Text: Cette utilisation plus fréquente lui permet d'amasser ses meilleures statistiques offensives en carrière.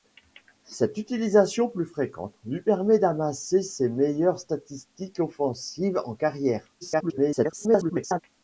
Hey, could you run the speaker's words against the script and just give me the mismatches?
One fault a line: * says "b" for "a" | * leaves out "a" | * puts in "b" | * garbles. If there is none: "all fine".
* garbles